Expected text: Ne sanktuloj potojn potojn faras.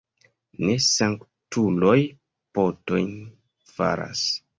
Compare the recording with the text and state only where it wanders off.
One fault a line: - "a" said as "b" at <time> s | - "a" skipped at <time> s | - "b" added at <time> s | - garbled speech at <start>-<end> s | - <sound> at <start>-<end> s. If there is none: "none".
- "potojn" skipped at 3.1 s